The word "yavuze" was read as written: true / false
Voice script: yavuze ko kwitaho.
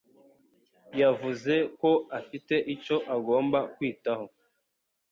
true